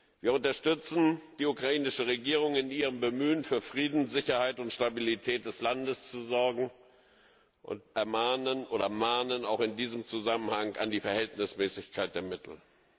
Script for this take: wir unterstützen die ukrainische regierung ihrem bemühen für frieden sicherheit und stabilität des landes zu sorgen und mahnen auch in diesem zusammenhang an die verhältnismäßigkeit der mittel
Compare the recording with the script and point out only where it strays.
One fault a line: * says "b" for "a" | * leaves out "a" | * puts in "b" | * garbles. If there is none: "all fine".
* puts in "in"